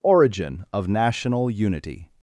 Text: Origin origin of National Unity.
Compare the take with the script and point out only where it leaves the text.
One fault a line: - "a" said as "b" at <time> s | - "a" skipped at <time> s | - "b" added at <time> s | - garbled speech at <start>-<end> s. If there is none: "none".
- "origin" skipped at 0.7 s